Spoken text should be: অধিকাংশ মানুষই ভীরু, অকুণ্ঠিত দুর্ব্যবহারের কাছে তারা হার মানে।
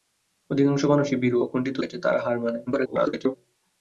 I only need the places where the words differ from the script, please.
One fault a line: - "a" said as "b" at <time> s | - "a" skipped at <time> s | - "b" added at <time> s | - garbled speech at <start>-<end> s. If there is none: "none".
- "দুর্ব্যবহারের" skipped at 1.8 s
- garbled speech at 2.7-3.3 s